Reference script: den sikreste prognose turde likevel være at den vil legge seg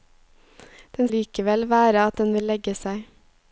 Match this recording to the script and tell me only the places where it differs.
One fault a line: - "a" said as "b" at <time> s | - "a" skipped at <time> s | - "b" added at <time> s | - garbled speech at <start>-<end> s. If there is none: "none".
- "sikreste prognose turde" skipped at 1.1 s